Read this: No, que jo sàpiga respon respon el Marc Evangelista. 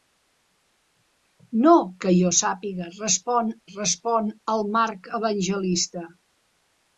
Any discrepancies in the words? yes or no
no